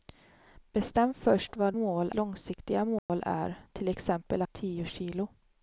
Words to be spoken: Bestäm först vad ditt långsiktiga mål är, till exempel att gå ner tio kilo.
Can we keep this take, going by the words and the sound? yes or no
no